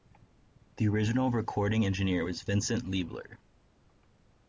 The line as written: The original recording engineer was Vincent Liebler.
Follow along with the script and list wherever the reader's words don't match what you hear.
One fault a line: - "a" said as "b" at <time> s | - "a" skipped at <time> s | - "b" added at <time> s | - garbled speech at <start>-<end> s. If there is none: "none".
none